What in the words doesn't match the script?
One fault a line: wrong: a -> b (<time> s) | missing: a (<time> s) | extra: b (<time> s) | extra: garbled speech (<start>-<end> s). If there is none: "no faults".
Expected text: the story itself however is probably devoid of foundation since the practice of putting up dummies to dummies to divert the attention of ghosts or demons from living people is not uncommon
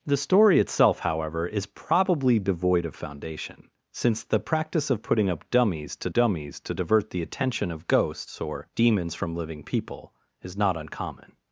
no faults